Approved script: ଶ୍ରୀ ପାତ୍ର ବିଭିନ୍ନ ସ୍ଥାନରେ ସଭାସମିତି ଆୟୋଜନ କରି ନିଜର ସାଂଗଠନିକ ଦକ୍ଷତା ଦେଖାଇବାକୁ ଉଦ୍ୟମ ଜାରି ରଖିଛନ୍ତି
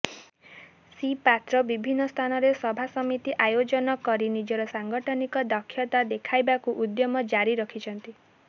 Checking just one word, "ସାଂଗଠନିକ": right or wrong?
right